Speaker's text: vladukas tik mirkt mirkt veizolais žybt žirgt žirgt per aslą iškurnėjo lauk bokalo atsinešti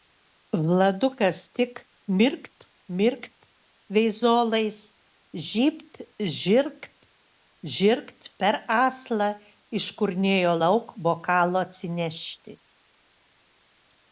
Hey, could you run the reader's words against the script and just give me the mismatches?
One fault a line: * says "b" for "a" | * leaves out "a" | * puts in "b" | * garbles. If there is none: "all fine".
all fine